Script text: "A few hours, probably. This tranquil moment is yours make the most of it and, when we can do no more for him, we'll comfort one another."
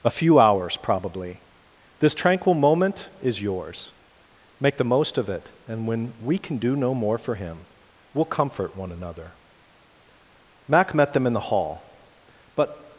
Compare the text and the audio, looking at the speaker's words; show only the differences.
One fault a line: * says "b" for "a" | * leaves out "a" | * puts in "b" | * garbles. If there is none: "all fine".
* puts in "Mac met them in the hall but"